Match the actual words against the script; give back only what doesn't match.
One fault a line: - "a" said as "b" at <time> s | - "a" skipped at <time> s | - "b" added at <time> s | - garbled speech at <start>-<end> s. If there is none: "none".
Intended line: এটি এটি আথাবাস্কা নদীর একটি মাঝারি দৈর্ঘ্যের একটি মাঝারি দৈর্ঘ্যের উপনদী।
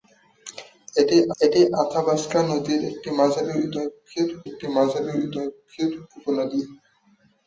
none